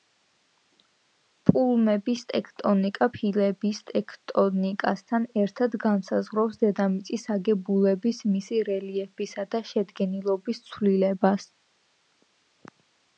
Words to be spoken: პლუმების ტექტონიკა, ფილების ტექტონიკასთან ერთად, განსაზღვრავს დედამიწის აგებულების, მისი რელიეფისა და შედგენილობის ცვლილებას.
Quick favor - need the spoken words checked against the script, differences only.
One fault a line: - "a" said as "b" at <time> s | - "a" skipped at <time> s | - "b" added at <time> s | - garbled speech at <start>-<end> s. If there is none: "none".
none